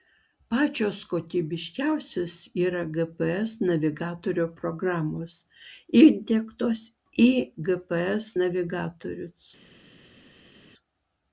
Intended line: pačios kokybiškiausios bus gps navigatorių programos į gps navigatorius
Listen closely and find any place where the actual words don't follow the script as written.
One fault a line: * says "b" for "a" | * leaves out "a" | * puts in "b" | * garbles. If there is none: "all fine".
* says "yra" for "bus"
* puts in "įdiegtos"